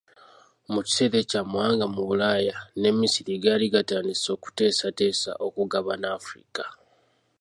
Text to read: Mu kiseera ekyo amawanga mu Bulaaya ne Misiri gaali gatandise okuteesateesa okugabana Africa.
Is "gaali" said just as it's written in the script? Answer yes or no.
yes